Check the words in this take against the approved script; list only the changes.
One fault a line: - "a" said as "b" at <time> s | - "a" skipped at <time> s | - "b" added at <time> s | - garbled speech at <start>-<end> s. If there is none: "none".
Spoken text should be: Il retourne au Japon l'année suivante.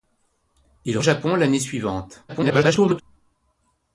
- "retourne" skipped at 1.0 s
- garbled speech at 2.3-3.0 s